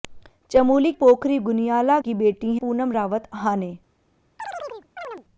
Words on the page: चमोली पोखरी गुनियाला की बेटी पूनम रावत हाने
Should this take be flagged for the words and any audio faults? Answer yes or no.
yes